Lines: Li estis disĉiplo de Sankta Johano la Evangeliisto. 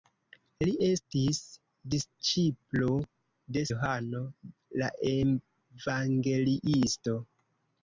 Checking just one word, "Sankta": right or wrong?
wrong